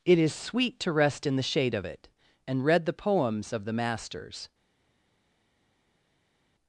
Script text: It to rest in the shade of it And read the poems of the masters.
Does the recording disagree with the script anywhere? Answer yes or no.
yes